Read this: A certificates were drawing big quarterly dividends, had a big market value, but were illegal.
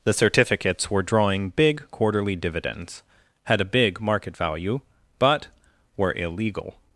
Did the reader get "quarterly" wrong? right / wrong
right